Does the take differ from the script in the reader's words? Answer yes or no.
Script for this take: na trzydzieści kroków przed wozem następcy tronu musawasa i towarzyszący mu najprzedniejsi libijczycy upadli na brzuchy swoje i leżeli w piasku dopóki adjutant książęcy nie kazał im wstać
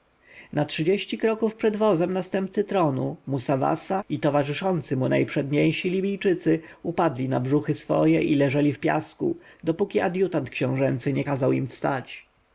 no